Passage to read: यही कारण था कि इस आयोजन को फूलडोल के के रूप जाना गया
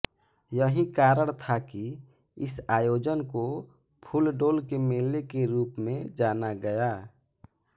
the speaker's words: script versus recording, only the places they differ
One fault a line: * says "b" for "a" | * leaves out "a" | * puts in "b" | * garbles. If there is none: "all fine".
* puts in "मेले"
* puts in "में"